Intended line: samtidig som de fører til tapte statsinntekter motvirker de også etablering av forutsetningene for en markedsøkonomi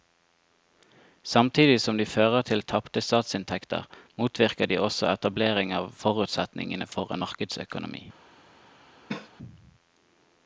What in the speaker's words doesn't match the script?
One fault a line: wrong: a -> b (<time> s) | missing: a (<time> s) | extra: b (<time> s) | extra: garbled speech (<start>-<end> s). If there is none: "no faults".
no faults